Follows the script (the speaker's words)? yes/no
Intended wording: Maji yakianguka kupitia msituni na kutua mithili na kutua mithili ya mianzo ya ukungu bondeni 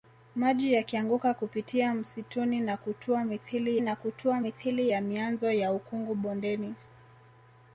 yes